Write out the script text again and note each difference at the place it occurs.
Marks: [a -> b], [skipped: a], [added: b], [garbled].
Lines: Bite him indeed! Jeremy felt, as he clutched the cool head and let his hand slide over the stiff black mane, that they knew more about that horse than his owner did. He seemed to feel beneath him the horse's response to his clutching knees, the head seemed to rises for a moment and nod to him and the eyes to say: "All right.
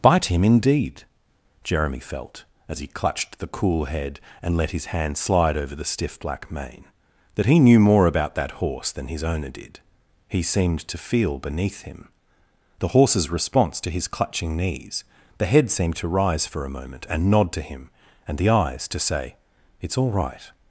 Bite him indeed! Jeremy felt, as he clutched the cool head and let his hand slide over the stiff black mane, that [they -> he] knew more about that horse than his owner did. He seemed to feel beneath him the horse's response to his clutching knees, the head seemed to [rises -> rise] for a moment and nod to him and the eyes to say: [added: It's] "All right.